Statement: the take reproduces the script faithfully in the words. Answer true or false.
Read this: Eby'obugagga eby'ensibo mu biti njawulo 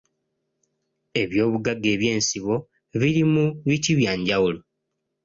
false